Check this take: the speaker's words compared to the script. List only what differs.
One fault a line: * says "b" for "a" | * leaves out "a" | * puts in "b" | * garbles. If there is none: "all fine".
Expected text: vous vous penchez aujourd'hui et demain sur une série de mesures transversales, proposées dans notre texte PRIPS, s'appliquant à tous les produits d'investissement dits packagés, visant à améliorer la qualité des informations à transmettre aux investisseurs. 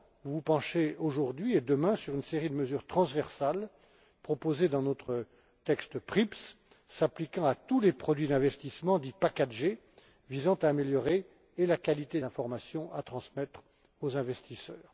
* leaves out "des"